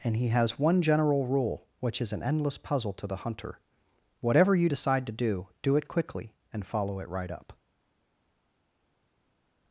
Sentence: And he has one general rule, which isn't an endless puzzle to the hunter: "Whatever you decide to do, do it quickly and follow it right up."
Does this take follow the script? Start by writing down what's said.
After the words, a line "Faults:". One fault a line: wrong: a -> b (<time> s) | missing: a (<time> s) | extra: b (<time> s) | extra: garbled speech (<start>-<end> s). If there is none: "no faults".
And he has one general rule, which is an endless puzzle to the hunter: "Whatever you decide to do, do it quickly and follow it right up."
Faults:
wrong: isn't -> is (2.0 s)